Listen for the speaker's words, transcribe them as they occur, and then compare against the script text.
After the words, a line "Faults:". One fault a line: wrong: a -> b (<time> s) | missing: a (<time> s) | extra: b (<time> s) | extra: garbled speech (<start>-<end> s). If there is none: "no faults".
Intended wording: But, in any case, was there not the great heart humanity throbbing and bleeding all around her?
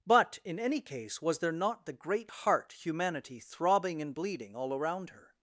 But, in any case, was there not the great heart humanity throbbing and bleeding all around her?
Faults:
no faults